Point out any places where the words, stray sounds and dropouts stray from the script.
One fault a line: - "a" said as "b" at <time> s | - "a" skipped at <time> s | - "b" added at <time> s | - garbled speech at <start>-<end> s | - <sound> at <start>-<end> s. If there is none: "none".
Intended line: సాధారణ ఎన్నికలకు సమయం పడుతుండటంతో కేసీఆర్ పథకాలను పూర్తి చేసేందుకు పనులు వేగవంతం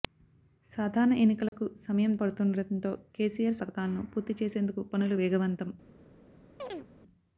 - dropout at 1.5-1.5 s
- chirp at 6.6-6.9 s